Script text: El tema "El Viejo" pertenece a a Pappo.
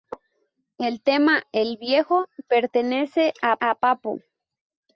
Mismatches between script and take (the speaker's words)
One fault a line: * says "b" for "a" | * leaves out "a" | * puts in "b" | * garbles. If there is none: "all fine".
all fine